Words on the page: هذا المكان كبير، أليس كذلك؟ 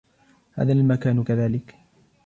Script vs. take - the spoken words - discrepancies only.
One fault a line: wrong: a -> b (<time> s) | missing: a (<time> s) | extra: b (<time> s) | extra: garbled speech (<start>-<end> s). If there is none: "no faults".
missing: كبير أليس (1.2 s)